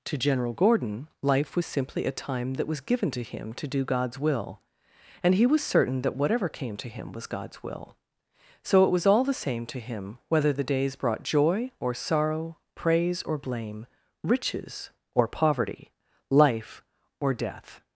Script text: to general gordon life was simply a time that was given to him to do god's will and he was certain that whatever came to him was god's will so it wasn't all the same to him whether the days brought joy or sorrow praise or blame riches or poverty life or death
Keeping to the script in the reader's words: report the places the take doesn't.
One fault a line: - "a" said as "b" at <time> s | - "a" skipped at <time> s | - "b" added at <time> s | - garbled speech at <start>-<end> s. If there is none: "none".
- "wasn't" said as "was" at 8.9 s